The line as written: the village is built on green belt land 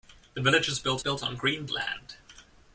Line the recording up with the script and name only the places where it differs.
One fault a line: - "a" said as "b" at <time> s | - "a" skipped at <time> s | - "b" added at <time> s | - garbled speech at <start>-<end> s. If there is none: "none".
- "built" added at 1.0 s
- "belt" skipped at 1.7 s